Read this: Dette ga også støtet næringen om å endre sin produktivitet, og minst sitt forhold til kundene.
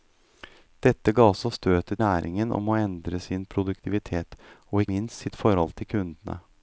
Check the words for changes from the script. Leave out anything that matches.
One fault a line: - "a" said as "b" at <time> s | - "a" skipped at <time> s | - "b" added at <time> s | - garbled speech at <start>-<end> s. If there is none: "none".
none